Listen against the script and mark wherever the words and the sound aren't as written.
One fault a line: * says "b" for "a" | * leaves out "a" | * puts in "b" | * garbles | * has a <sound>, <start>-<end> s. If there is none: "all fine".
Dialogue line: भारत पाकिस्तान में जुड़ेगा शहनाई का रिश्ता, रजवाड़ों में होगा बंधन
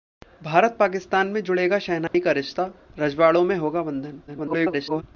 * has a dropout, 2.1-2.1 s
* garbles